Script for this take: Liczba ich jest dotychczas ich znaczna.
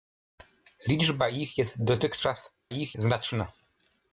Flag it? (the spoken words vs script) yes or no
no